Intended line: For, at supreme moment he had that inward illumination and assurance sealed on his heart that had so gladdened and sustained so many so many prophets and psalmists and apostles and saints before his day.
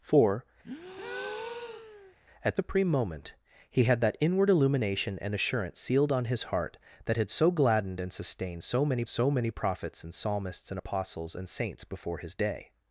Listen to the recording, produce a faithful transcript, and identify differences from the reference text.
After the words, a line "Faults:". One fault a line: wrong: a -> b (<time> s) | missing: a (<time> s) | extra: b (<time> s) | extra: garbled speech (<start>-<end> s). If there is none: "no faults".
For, at supreme moment he had that inward illumination and assurance sealed on his heart that had so gladdened and sustained so many so many prophets and psalmists and apostles and saints before his day.
Faults:
no faults